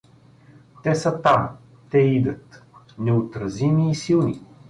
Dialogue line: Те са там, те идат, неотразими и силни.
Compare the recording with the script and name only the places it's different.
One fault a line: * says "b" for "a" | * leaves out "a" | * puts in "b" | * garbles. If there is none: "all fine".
all fine